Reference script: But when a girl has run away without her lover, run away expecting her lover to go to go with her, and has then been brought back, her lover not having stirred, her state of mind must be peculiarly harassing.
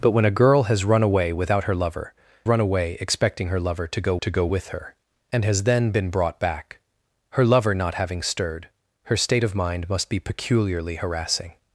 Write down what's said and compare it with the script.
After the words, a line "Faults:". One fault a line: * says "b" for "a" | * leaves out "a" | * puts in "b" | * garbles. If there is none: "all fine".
But when a girl has run away without her lover, run away expecting her lover to go to go with her, and has then been brought back, her lover not having stirred, her state of mind must be peculiarly harassing.
Faults:
all fine